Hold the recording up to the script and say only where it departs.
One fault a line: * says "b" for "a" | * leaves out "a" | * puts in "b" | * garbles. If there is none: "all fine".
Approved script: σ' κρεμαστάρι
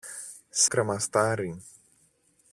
all fine